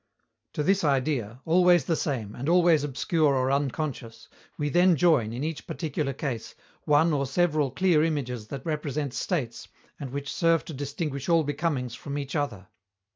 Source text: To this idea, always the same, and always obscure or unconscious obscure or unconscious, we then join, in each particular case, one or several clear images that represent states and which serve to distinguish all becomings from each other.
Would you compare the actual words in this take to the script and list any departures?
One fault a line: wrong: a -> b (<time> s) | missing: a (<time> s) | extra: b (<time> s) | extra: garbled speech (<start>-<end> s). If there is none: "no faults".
missing: obscure or unconscious (4.3 s)